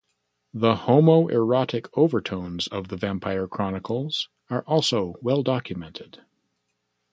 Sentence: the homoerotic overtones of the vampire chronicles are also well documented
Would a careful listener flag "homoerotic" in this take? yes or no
no